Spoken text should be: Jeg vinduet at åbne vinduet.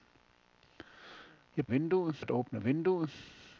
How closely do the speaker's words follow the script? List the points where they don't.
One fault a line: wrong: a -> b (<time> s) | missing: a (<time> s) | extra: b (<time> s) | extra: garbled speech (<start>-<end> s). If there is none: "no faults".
no faults